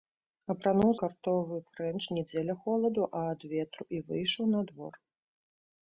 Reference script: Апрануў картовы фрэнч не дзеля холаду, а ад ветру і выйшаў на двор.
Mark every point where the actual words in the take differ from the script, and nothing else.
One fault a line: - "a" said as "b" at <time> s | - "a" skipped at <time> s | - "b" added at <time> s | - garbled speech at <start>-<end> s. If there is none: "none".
none